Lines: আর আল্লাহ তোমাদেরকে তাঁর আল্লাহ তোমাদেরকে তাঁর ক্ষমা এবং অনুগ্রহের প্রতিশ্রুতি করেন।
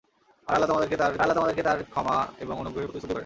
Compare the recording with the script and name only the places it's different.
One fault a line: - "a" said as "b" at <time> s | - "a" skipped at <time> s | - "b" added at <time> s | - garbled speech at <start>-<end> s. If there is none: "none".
none